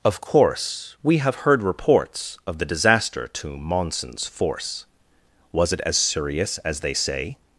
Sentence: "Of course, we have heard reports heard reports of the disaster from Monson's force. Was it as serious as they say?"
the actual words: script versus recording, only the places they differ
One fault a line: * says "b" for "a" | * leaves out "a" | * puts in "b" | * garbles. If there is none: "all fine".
* leaves out "heard reports"
* says "to" for "from"